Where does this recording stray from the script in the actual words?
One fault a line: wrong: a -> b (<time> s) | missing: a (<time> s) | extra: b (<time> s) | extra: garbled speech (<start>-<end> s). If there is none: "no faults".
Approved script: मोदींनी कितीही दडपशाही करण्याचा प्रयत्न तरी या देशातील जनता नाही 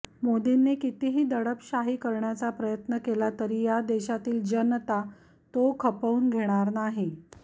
extra: केला (3.1 s)
extra: तो खपवून घेणार (5.5 s)